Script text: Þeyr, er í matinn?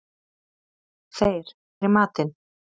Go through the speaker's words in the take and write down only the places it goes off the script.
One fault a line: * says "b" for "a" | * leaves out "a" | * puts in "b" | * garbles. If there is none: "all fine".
all fine